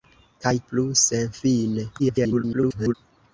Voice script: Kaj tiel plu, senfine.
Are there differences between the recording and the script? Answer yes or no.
yes